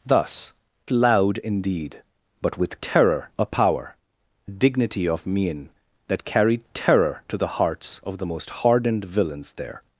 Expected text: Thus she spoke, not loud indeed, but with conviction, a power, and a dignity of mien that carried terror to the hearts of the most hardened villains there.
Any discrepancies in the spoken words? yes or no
yes